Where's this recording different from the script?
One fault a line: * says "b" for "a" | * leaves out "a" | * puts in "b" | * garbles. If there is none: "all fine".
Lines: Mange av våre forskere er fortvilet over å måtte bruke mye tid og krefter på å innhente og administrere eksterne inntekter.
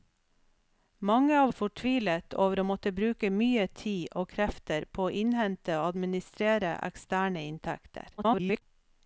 * leaves out "våre forskere"
* garbles